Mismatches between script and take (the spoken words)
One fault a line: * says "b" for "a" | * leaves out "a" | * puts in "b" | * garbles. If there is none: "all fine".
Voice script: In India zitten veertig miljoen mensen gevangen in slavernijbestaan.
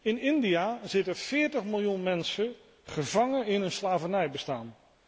* puts in "een"